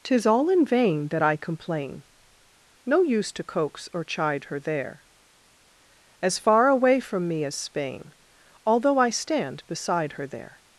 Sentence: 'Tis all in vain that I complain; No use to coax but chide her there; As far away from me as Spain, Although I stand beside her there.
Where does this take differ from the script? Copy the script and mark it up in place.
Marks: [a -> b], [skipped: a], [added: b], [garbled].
'Tis all in vain that I complain; No use to coax [but -> or] chide her there; As far away from me as Spain, Although I stand beside her there.